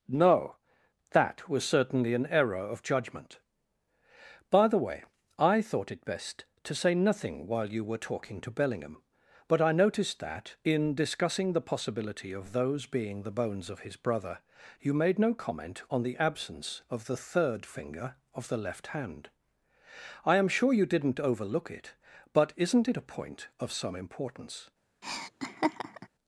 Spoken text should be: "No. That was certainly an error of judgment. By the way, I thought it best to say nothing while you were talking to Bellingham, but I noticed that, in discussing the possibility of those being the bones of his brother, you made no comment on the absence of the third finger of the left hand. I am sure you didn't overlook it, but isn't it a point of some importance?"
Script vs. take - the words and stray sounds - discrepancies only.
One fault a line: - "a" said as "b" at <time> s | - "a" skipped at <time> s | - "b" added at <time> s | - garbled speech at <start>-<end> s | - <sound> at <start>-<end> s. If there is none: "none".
- laugh at 25.0-26.1 s